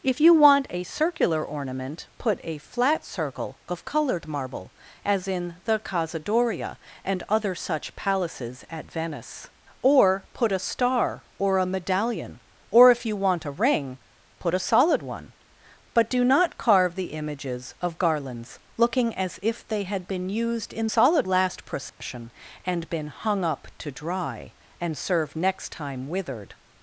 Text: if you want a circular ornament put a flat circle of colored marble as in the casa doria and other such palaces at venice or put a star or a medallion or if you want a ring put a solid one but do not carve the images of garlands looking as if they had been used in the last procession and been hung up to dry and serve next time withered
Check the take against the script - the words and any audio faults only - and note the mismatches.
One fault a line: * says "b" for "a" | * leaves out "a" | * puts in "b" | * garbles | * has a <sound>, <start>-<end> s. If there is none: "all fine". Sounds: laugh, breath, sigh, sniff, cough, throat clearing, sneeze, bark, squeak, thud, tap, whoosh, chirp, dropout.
* says "solid" for "the"
* has a dropout, 21.9-22.0 s